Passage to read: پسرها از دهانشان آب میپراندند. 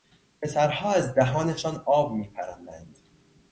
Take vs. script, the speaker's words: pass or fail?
pass